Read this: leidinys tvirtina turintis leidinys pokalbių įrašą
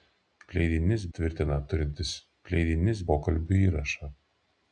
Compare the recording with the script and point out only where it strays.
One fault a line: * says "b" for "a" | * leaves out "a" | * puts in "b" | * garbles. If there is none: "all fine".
all fine